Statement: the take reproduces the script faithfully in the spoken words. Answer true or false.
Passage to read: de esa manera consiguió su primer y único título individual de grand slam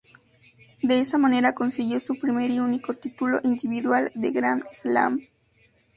true